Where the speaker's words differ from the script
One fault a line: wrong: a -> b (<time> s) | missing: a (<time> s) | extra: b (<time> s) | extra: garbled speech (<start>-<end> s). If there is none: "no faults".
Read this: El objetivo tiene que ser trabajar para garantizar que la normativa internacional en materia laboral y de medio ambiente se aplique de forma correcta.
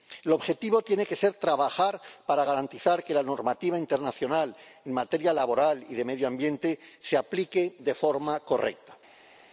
no faults